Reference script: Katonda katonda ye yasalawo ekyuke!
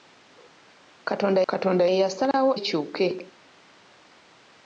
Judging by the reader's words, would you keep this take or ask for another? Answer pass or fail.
pass